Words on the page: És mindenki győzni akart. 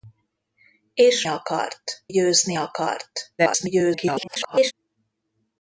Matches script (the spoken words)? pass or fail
fail